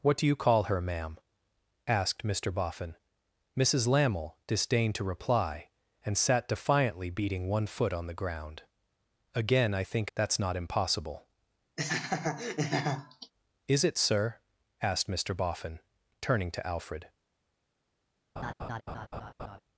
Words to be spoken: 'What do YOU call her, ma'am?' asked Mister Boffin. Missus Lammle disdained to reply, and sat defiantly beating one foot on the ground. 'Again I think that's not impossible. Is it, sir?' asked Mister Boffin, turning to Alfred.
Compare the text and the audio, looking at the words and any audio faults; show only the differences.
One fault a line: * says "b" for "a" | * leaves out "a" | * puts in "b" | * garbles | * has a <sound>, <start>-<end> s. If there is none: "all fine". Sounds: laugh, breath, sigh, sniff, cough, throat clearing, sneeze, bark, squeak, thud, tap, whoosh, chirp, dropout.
* has a laugh, 11.8-13.3 s
* has a laugh, 18.4-19.6 s